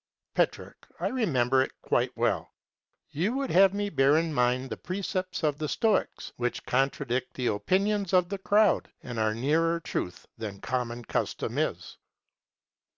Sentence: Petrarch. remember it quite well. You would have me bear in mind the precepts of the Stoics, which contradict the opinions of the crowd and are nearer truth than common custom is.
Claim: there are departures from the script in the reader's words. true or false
true